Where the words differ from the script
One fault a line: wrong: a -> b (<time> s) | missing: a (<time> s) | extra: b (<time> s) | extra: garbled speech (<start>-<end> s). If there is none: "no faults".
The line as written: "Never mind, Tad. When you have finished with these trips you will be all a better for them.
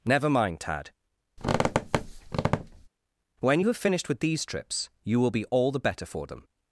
wrong: a -> the (5.7 s)